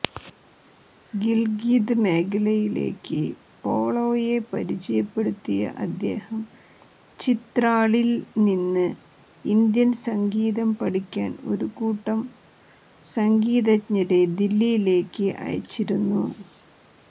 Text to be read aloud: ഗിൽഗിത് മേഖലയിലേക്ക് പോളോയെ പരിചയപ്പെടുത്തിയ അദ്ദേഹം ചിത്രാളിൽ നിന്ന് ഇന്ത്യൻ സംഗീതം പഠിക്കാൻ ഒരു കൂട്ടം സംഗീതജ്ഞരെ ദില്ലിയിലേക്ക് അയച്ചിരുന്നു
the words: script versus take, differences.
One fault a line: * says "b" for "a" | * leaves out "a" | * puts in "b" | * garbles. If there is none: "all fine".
all fine